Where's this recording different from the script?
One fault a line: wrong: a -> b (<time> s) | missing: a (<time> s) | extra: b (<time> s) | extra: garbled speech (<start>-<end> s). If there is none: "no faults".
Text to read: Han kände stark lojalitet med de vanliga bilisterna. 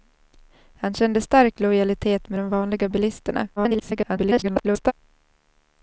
extra: garbled speech (3.6-4.9 s)